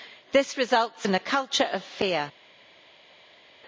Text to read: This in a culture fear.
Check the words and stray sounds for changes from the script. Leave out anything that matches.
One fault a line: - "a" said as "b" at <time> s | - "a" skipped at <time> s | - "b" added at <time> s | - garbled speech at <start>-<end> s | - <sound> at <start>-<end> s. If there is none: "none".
- "results" added at 0.6 s
- "of" added at 1.7 s